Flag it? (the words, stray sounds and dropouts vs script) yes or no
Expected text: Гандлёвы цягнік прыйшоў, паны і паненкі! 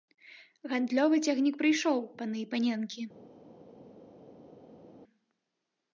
no